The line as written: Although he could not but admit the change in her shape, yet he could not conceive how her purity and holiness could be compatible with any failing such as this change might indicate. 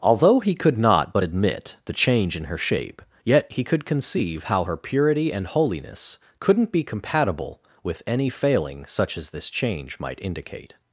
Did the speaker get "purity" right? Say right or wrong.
right